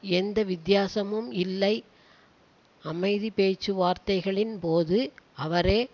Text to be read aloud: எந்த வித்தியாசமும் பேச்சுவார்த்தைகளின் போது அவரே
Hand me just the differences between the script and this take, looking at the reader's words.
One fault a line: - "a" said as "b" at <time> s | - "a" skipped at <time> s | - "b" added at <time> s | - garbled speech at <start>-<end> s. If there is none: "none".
- "இல்லை அமைதி" added at 1.3 s